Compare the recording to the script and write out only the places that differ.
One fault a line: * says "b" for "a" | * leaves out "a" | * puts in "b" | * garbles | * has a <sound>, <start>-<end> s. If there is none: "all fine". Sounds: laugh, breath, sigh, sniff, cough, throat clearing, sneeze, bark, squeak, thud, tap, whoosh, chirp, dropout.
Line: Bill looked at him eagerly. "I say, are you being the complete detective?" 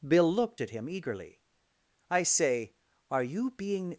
* leaves out "the complete detective"